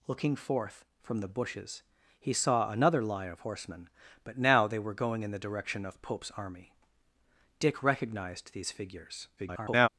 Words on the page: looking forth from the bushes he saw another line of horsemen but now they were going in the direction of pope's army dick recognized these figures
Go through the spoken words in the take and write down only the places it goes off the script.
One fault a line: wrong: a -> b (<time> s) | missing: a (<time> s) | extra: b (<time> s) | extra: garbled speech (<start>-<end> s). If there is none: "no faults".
extra: garbled speech (9.4-9.9 s)